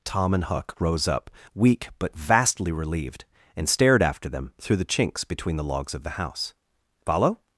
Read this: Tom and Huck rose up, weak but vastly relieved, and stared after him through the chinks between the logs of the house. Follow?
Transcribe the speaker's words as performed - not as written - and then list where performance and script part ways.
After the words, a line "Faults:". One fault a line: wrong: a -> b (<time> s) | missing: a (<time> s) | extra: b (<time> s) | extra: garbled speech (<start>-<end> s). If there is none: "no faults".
Tom and Huck rose up, weak but vastly relieved, and stared after them through the chinks between the logs of the house. Follow?
Faults:
wrong: him -> them (4.3 s)